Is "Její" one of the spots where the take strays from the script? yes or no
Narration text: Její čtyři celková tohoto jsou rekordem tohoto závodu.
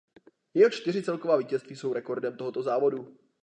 yes